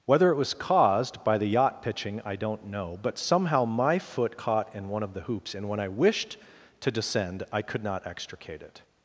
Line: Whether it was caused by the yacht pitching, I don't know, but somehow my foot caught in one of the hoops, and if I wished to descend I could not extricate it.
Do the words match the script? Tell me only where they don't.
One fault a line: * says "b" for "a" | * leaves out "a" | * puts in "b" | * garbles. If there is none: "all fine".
* says "when" for "if"